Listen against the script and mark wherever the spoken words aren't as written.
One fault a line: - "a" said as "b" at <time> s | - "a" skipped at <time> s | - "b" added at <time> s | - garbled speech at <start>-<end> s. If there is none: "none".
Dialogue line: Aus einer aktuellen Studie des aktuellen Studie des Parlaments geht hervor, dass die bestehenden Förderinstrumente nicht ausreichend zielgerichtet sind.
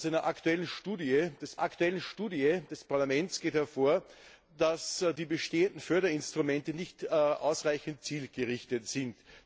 none